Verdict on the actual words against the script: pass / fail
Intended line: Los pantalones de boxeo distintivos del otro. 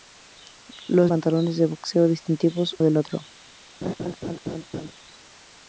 pass